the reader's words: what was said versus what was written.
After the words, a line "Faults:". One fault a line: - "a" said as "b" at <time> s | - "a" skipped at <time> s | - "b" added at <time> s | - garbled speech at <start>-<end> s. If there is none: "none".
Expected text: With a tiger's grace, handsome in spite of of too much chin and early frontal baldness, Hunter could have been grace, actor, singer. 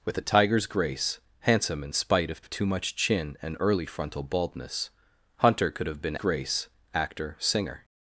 With a tiger's grace, handsome in spite of of too much chin and early frontal baldness, Hunter could have been grace, actor, singer.
Faults:
none